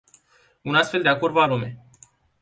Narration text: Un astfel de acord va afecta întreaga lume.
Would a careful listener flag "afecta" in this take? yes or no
yes